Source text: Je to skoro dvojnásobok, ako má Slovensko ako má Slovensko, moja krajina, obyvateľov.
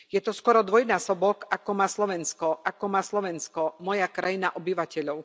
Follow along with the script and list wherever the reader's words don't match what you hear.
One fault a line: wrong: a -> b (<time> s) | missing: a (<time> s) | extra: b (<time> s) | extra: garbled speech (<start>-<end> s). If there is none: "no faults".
no faults